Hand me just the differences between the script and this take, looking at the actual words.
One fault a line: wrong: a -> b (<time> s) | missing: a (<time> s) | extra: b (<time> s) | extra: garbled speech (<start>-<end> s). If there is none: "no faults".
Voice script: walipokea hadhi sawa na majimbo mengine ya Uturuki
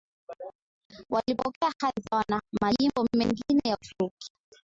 no faults